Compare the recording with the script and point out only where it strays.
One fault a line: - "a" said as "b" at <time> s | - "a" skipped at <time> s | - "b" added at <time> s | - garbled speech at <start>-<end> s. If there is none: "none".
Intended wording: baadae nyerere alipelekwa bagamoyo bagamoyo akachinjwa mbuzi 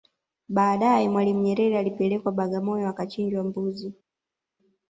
- "mwalimu" added at 1.1 s
- "bagamoyo" skipped at 2.9 s